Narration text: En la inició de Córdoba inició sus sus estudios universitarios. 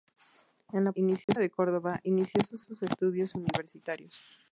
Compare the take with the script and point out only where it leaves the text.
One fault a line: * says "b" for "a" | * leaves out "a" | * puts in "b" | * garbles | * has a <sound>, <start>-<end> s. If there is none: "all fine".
* has a dropout, 1.2-1.3 s